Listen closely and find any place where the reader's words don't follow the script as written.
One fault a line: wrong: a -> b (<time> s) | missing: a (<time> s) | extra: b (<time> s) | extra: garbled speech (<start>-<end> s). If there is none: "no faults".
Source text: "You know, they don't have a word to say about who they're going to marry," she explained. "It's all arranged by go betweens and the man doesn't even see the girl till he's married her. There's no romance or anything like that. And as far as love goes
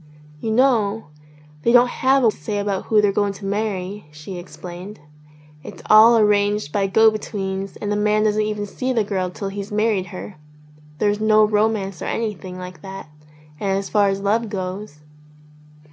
missing: word (2.3 s)